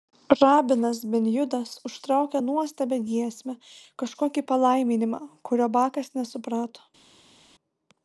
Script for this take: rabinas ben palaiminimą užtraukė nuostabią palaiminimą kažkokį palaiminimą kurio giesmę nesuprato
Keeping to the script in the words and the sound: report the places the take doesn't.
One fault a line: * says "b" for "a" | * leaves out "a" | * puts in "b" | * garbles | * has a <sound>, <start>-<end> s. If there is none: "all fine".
* says "judas" for "palaiminimą"
* says "giesmę" for "palaiminimą"
* says "bakas" for "giesmę"